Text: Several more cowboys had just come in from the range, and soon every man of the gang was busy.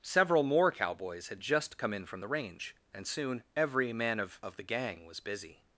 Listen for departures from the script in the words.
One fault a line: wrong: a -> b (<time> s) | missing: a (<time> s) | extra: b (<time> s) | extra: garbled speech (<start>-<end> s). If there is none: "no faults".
extra: of (4.4 s)